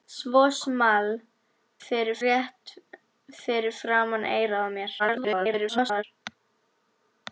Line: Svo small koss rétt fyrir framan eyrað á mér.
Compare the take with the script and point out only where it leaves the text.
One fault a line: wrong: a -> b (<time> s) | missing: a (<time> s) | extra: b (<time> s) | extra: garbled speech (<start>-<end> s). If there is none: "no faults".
wrong: koss -> fyrir (1.9 s)
extra: garbled speech (5.0-6.0 s)